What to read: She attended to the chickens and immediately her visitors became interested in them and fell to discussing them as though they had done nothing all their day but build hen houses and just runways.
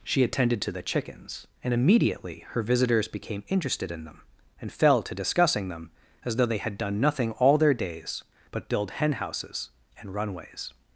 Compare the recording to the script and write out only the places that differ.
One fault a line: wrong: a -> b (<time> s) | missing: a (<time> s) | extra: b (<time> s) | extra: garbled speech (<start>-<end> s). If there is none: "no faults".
wrong: day -> days (7.7 s)
missing: just (10.1 s)